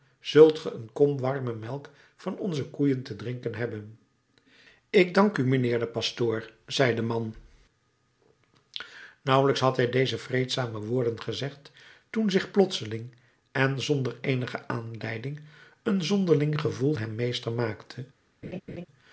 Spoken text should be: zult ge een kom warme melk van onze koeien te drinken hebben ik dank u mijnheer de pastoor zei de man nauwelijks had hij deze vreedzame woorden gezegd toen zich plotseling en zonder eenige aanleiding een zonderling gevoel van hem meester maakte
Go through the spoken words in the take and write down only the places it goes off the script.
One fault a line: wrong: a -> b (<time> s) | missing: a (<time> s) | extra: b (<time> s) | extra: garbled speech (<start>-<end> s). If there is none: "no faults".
missing: van (16.9 s)